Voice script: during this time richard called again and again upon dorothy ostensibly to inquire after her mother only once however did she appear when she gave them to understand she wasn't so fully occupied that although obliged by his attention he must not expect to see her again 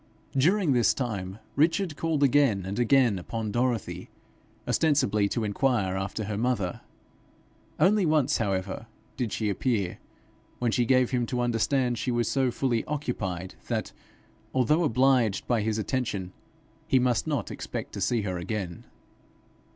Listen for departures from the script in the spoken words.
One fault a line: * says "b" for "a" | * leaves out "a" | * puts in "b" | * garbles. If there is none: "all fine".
* says "him" for "them"
* says "was" for "wasn't"